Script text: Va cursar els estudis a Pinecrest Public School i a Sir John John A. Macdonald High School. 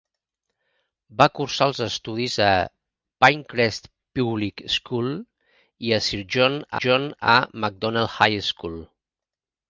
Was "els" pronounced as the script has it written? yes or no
yes